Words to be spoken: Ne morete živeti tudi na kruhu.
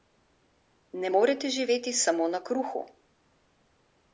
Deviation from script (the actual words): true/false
true